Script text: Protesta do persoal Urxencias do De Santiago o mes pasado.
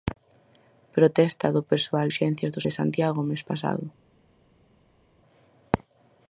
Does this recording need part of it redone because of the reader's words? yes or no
no